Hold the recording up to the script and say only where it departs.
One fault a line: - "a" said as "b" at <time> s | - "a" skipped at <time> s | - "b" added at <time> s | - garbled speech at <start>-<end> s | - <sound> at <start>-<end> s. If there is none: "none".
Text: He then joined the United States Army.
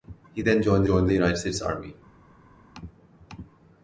- "joined" added at 0.8 s